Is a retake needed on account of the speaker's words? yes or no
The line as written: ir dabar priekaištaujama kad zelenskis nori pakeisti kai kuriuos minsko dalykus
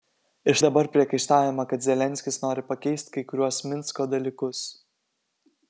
no